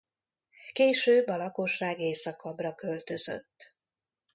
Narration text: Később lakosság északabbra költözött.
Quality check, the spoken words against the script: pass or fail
fail